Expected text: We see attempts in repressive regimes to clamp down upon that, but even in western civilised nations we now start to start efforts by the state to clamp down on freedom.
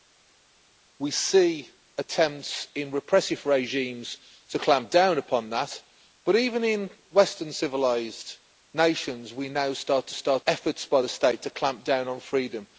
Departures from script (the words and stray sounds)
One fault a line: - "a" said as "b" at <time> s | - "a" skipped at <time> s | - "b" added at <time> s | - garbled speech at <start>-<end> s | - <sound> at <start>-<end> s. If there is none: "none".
none